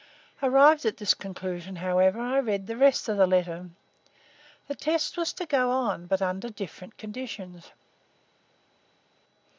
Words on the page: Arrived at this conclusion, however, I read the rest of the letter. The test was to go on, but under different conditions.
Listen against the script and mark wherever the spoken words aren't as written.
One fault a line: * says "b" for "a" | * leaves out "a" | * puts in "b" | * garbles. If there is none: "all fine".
all fine